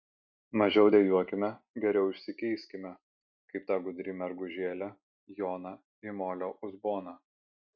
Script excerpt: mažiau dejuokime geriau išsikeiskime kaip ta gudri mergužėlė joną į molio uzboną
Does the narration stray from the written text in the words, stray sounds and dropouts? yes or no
no